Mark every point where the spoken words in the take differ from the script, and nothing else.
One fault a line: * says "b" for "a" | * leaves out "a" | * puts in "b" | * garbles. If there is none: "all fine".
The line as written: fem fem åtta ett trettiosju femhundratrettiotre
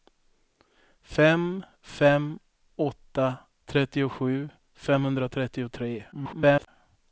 * leaves out "ett"
* garbles